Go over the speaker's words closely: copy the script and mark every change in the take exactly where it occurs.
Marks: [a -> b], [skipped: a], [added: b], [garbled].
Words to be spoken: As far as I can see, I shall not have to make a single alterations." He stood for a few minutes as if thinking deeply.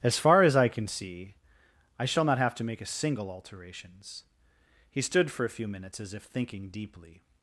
As far as I can see, I shall not have to make a single alterations." He stood for a few minutes as if thinking deeply.